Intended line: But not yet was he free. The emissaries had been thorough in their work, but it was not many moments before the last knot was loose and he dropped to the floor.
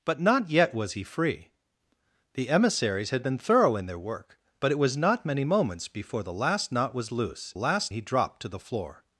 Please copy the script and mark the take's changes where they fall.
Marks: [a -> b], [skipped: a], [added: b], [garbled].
But not yet was he free. The emissaries had been thorough in their work, but it was not many moments before the last knot was loose [and -> last] he dropped to the floor.